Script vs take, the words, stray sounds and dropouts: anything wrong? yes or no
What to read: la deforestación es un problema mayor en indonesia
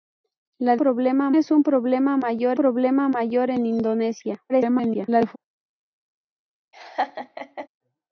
yes